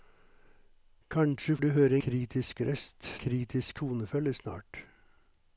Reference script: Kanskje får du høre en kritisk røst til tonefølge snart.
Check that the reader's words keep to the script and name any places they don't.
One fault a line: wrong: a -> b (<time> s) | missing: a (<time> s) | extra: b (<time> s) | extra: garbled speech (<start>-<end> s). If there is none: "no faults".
missing: får (1.6 s)
missing: en (2.0 s)
wrong: til -> kritisk (3.2 s)